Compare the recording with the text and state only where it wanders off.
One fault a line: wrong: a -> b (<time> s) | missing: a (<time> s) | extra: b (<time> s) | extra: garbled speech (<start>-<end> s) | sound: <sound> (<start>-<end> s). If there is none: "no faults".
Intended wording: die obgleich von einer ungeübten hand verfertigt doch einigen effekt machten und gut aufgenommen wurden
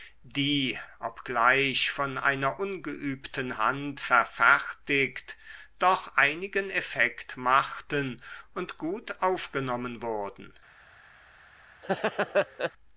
sound: laugh (11.8-12.7 s)